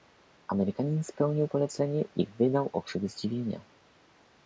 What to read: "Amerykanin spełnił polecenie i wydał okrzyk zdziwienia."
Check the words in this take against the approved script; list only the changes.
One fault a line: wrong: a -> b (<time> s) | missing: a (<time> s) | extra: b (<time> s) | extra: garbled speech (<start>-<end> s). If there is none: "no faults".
no faults